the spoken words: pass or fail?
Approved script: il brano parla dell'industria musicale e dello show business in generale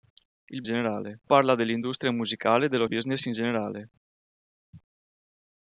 fail